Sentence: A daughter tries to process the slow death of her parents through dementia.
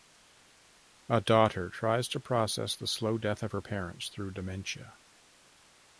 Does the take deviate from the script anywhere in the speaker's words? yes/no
no